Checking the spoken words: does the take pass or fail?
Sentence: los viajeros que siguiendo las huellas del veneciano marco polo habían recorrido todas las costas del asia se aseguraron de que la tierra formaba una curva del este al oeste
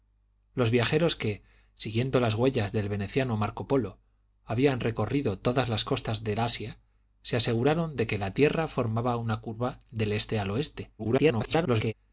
fail